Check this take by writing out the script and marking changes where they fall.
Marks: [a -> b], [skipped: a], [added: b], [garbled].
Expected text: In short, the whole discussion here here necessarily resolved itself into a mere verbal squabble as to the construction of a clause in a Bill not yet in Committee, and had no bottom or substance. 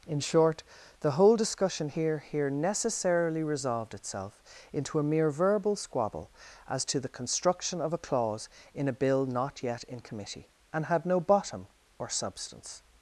In short, the whole discussion here here necessarily resolved itself into a mere verbal squabble as to the construction of a clause in a Bill not yet in Committee, and had no bottom or substance.